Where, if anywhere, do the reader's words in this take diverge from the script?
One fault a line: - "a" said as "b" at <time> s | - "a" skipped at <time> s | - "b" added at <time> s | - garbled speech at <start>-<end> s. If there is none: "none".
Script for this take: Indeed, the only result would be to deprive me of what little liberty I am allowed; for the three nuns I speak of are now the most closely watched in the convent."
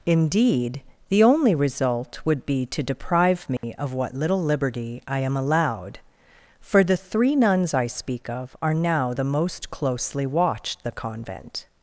- "in" skipped at 10.8 s